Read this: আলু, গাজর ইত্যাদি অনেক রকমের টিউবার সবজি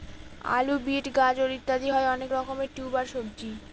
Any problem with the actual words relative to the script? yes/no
yes